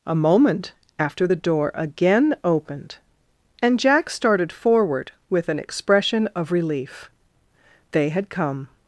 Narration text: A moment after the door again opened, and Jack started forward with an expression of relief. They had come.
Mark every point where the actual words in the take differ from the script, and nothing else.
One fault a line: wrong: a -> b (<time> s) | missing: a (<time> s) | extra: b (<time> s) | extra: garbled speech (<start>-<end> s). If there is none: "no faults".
no faults